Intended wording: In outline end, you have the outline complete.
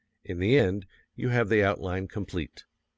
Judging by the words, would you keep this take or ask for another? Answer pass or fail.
fail